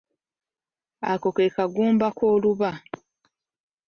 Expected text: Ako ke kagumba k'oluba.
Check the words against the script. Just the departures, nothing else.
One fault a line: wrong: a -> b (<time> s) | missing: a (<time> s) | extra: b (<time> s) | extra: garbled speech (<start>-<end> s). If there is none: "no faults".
no faults